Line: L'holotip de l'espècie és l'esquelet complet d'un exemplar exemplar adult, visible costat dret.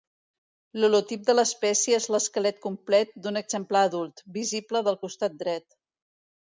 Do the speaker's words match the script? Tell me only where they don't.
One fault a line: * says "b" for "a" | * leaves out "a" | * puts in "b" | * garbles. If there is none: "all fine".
* leaves out "exemplar"
* puts in "del"